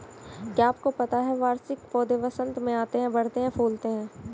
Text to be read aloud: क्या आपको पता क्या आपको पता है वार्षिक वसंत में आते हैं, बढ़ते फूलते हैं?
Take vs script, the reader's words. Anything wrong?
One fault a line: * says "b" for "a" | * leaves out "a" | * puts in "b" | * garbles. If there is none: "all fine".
* leaves out "क्या आपको पता"
* puts in "पौधे"
* puts in "हैं"